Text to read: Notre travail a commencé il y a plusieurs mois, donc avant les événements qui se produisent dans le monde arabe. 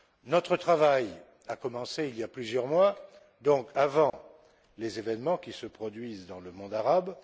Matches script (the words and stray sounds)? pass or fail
fail